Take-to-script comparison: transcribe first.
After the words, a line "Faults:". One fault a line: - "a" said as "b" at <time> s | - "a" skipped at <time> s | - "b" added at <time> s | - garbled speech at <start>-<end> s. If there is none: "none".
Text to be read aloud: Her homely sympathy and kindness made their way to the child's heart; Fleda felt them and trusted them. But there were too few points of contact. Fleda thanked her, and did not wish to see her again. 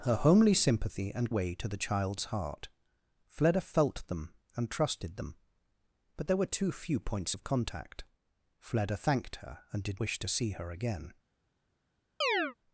Her homely sympathy and way to the child's heart; Fleda felt them and trusted them. But there were too few points of contact. Fleda thanked her, and did wish to see her again.
Faults:
- "kindness made their" skipped at 1.3 s
- "not" skipped at 10.0 s